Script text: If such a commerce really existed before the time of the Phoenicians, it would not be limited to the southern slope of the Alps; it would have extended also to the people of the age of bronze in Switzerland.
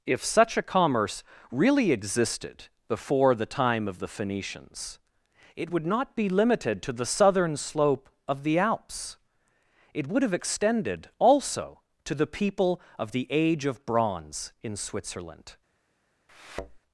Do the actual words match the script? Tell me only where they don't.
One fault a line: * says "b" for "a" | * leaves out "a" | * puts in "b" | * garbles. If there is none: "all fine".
all fine